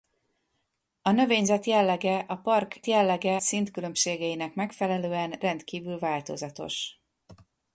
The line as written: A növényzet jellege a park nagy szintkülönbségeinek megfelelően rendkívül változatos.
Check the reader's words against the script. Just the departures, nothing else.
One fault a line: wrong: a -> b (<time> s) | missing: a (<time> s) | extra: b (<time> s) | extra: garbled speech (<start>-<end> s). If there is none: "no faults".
wrong: nagy -> jellege (2.9 s)